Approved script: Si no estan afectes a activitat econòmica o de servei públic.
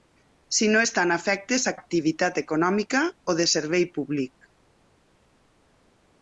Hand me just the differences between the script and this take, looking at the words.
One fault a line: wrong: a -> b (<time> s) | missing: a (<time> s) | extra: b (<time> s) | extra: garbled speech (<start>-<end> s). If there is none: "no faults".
no faults